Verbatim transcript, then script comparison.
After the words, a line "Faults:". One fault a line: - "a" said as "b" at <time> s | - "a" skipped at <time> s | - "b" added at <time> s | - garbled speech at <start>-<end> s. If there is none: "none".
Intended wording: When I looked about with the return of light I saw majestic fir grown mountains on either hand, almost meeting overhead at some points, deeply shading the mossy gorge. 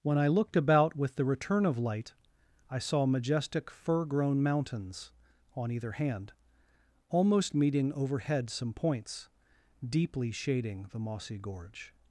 When I looked about with the return of light I saw majestic fir grown mountains on either hand, almost meeting overhead some points, deeply shading the mossy gorge.
Faults:
- "at" skipped at 8.5 s